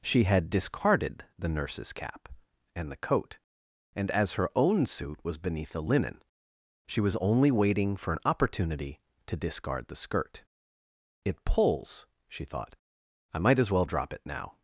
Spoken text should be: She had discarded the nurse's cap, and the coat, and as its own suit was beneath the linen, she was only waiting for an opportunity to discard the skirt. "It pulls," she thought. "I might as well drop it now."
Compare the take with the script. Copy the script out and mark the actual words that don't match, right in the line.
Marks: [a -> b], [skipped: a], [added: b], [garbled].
She had discarded the nurse's cap, and the coat, and as [its -> her] own suit was beneath the linen, she was only waiting for an opportunity to discard the skirt. "It pulls," she thought. "I might as well drop it now."